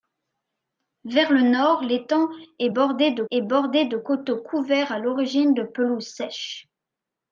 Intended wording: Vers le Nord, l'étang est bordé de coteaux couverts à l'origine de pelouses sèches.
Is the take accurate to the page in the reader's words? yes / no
no